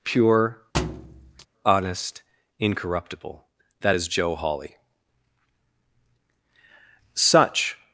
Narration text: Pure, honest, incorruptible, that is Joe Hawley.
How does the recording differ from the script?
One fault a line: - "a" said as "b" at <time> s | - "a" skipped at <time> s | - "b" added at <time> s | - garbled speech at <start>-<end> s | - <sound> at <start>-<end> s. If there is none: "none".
- thud at 0.7-1.5 s
- "Such" added at 7.1 s